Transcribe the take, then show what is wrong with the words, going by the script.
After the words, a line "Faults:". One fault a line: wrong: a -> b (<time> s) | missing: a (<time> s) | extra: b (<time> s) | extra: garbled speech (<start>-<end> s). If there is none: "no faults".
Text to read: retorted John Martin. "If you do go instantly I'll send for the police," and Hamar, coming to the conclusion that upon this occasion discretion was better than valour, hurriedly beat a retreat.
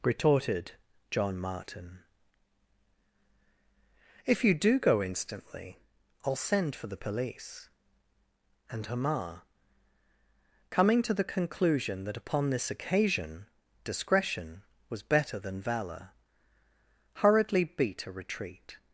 retorted John Martin. "If you do go instantly I'll send for the police," and Hamar, coming to the conclusion that upon this occasion discretion was better than valour, hurriedly beat a retreat.
Faults:
no faults